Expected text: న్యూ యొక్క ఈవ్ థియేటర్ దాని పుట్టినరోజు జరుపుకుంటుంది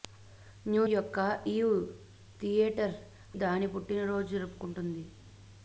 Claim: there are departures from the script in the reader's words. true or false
false